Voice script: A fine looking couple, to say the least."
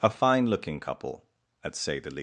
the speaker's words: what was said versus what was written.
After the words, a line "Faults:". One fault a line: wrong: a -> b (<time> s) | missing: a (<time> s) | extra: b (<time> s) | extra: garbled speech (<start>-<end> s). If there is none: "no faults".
A fine looking couple, at say the least."
Faults:
wrong: to -> at (1.6 s)